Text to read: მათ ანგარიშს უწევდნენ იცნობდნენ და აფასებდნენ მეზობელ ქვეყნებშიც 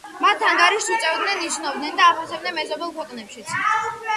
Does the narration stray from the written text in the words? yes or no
no